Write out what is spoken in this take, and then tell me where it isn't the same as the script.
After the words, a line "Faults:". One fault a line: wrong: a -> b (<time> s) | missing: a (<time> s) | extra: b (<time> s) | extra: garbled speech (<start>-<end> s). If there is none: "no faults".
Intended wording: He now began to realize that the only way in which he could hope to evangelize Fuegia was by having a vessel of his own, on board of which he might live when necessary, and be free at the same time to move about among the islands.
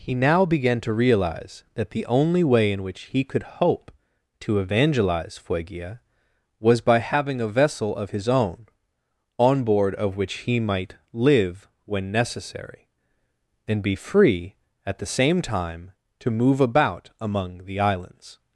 He now began to realize that the only way in which he could hope to evangelize Fuegia was by having a vessel of his own, on board of which he might live when necessary, and be free at the same time to move about among the islands.
Faults:
no faults